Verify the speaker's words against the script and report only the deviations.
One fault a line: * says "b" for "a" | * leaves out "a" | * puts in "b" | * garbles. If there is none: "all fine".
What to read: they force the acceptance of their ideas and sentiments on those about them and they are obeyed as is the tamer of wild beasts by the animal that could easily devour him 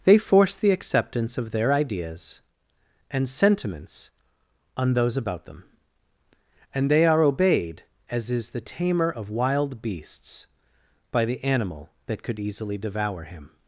all fine